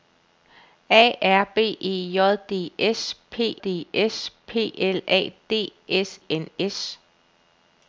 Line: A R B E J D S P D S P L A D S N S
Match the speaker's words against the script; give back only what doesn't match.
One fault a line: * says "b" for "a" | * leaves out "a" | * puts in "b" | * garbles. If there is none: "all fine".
all fine